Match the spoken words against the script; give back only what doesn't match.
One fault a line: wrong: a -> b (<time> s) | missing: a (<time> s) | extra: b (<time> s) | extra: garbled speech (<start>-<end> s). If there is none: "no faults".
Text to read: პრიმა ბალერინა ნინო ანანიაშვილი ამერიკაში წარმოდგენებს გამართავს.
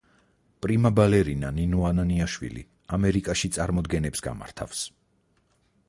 no faults